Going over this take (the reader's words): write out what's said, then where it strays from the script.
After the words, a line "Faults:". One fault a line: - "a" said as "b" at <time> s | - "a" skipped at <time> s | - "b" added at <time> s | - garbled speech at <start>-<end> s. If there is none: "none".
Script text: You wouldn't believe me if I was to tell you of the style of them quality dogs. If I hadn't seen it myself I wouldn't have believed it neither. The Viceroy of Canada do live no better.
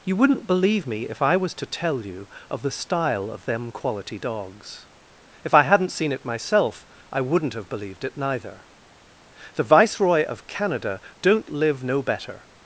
You wouldn't believe me if I was to tell you of the style of them quality dogs. If I hadn't seen it myself I wouldn't have believed it neither. The Viceroy of Canada don't live no better.
Faults:
- "do" said as "don't" at 11.2 s